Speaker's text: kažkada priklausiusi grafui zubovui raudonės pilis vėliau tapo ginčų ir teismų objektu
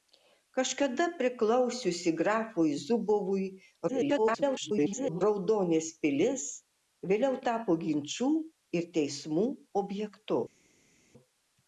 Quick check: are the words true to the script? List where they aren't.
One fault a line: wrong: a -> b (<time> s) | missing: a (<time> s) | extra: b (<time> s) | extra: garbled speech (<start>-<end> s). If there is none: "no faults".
extra: garbled speech (3.9-5.2 s)